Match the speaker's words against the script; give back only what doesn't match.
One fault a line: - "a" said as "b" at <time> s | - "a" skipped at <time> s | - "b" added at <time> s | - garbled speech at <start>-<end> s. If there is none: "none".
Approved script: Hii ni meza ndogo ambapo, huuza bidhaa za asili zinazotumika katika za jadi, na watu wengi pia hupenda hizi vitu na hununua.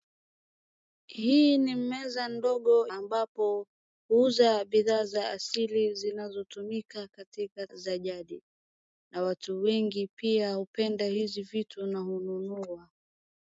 none